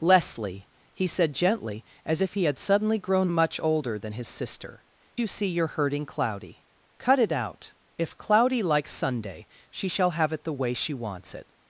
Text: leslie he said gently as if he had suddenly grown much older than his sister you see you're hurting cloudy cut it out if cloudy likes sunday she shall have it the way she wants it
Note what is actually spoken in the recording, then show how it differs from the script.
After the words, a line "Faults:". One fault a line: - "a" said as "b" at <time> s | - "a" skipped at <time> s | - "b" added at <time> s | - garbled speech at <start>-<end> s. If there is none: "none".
leslie he said gently as if he had suddenly grown much older than his sister you see you're hurting cloudy cut it out if cloudy likes sunday she shall have it the way she wants it
Faults:
none